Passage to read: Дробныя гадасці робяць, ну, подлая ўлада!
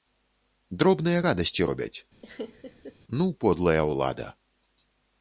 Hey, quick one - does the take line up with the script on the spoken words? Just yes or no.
yes